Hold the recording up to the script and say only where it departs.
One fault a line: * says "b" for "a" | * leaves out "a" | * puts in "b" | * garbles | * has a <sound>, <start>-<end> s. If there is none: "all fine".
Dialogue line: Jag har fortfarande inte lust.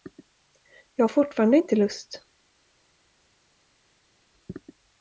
all fine